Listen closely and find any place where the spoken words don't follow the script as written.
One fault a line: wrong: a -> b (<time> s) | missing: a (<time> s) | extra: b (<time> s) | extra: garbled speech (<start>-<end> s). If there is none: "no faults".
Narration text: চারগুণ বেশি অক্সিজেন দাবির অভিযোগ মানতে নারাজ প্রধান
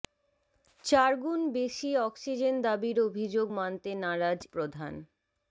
no faults